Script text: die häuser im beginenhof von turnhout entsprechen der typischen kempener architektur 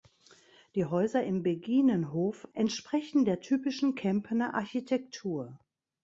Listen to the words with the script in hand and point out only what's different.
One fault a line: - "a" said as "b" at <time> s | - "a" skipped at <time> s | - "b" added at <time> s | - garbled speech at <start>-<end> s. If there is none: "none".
- "von turnhout" skipped at 2.5 s